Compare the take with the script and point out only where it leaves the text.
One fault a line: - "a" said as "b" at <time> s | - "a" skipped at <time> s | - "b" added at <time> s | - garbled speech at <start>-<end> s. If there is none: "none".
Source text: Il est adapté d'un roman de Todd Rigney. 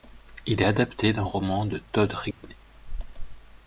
none